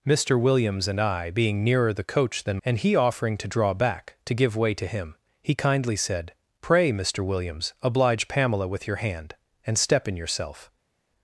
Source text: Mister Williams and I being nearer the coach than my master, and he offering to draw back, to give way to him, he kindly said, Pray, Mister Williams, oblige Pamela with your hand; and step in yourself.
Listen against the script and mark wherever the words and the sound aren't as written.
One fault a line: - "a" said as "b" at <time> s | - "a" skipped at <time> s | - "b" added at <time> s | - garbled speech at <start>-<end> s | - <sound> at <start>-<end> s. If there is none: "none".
- "my master" skipped at 2.6 s